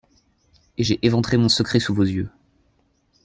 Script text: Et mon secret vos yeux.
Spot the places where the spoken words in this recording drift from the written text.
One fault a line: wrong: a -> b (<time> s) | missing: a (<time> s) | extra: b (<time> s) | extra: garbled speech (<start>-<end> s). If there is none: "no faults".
extra: j'ai éventré (0.8 s)
extra: sous (1.8 s)